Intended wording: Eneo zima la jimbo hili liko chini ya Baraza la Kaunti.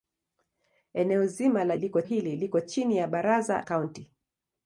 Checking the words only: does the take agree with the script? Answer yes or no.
no